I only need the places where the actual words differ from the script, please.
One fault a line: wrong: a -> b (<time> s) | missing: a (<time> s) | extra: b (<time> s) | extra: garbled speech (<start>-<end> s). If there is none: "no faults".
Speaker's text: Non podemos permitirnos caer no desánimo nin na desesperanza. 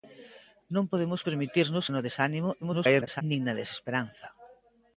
missing: caer (1.9 s)
extra: garbled speech (2.6-3.2 s)